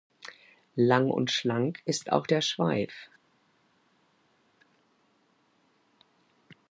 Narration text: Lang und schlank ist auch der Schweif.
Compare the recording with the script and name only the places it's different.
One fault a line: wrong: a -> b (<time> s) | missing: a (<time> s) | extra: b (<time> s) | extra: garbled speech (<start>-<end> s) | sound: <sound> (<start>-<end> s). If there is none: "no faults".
no faults